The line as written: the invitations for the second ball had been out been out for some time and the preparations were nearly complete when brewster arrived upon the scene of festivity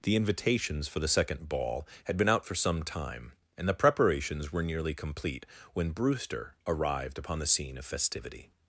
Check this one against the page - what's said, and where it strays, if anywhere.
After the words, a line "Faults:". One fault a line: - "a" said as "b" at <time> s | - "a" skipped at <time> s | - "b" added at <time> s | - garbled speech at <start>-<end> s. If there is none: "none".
the invitations for the second ball had been out for some time and the preparations were nearly complete when brewster arrived upon the scene of festivity
Faults:
- "been out" skipped at 2.5 s